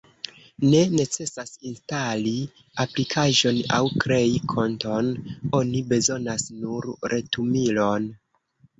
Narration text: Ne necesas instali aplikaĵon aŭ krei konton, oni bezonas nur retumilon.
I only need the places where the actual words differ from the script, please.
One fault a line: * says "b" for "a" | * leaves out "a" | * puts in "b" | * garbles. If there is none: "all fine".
all fine